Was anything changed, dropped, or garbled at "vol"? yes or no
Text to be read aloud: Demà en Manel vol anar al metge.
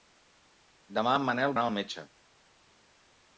yes